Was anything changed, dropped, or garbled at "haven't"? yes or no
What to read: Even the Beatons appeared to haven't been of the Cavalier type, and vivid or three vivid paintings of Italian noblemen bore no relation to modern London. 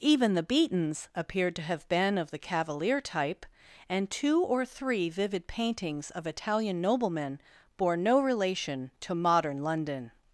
yes